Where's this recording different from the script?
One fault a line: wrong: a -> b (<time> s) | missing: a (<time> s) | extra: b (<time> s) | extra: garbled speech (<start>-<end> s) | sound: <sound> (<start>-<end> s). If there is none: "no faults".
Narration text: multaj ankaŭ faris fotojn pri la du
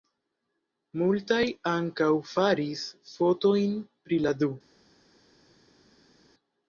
no faults